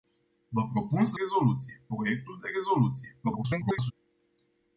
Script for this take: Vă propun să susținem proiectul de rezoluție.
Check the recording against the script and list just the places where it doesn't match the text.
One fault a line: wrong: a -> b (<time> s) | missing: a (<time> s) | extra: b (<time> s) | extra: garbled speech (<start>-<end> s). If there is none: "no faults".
wrong: susținem -> rezoluție (1.1 s)
extra: garbled speech (3.2-3.9 s)